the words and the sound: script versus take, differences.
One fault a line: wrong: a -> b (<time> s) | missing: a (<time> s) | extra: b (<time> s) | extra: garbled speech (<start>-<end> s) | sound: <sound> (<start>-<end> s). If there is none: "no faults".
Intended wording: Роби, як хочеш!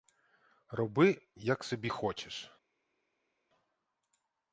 extra: собі (1.6 s)